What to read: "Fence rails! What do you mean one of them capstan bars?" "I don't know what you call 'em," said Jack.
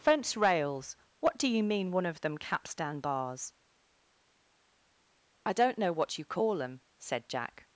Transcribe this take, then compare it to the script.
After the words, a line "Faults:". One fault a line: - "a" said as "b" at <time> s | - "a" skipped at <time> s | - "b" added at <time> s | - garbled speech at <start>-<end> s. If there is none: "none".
"Fence rails! What do you mean one of them capstan bars?" "I don't know what you call 'em," said Jack.
Faults:
none